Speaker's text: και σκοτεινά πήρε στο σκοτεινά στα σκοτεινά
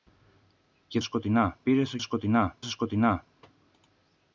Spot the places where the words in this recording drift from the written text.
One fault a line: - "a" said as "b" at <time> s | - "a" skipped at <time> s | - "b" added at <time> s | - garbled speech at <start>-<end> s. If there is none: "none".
none